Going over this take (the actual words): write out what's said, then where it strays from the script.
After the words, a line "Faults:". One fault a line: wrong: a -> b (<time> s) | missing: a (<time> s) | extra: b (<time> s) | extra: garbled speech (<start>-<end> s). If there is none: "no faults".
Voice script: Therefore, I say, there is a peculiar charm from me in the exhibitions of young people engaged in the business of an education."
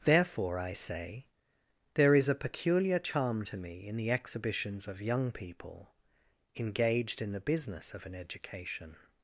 Therefore, I say, there is a peculiar charm to me in the exhibitions of young people engaged in the business of an education."
Faults:
wrong: from -> to (3.4 s)